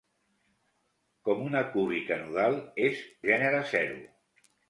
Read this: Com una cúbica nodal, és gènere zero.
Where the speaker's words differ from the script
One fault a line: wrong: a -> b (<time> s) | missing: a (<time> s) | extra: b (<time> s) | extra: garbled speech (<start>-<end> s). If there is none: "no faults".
no faults